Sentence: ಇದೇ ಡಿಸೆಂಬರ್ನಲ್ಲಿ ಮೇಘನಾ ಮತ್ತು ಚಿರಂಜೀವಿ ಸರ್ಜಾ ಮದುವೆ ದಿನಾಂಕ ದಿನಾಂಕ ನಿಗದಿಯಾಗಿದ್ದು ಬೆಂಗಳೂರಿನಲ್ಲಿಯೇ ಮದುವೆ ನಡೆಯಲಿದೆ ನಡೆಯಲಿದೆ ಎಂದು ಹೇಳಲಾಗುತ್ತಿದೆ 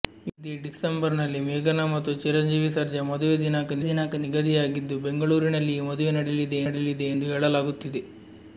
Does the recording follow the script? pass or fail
pass